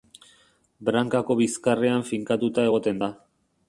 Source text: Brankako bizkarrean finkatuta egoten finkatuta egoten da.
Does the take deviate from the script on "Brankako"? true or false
false